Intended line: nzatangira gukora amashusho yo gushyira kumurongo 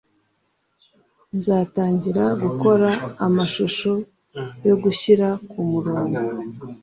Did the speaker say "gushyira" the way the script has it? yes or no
yes